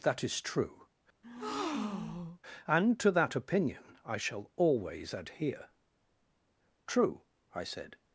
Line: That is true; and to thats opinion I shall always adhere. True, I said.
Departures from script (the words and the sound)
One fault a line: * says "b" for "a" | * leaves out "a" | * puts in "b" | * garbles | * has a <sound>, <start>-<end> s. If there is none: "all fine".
* has a breath, 1.2-2.4 s
* says "that" for "thats"